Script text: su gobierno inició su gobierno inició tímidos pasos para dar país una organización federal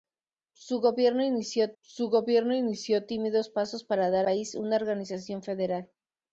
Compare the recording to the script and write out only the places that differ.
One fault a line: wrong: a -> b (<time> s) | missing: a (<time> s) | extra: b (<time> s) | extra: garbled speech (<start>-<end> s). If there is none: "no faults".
no faults